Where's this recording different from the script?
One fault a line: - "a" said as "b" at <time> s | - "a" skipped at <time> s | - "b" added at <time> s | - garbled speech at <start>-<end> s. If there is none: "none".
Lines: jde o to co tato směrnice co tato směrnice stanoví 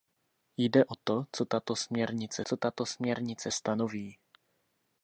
none